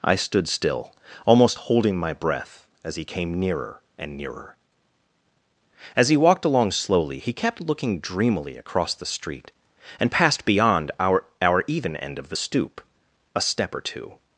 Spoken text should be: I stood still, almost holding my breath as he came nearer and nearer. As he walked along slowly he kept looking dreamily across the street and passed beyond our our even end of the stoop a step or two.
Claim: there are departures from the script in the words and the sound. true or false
false